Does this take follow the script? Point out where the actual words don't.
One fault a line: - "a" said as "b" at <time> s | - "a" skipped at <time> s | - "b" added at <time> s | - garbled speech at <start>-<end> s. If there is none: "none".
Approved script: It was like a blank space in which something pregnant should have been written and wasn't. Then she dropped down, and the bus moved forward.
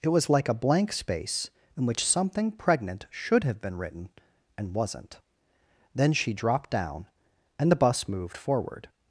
none